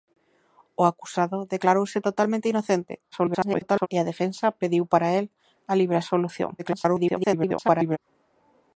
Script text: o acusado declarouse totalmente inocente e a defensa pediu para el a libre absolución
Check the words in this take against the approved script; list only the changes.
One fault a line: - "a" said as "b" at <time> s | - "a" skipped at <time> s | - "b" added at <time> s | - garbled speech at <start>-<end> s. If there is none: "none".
- garbled speech at 3.1-3.9 s
- garbled speech at 6.6-8.0 s